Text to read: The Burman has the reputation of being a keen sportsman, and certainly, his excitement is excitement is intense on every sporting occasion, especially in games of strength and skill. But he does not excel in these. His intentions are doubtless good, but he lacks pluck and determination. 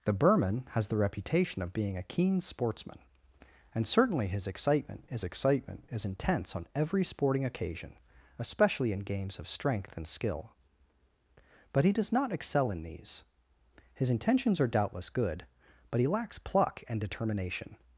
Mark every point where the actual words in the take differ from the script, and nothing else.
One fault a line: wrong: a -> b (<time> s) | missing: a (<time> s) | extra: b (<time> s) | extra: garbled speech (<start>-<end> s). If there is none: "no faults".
no faults